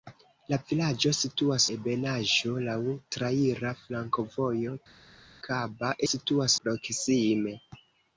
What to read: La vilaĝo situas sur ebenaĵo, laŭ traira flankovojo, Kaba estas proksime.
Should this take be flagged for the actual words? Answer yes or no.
yes